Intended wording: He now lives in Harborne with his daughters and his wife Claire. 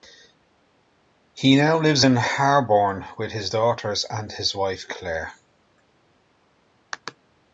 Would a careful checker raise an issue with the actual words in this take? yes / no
no